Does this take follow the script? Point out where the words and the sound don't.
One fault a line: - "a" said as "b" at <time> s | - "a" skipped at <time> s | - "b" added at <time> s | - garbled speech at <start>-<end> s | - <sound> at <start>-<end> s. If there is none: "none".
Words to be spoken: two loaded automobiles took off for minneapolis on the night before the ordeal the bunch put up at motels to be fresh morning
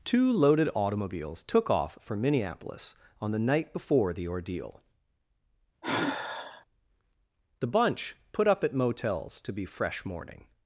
- sigh at 5.8-6.6 s